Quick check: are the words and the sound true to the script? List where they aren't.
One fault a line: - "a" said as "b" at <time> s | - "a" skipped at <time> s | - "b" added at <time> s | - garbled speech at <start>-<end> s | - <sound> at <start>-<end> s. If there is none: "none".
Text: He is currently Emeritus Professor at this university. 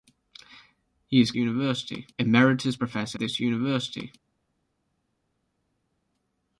- "currently" said as "university" at 1.3 s
- "at" skipped at 3.2 s